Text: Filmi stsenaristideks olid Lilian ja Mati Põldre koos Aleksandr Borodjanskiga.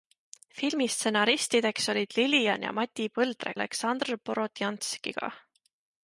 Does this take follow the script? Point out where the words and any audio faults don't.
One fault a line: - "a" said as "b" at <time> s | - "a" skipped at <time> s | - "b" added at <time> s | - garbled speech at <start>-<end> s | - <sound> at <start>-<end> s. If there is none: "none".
- "koos" skipped at 3.5 s